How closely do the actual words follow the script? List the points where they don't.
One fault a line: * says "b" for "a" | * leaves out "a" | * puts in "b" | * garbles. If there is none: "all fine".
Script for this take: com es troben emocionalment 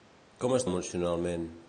* leaves out "troben"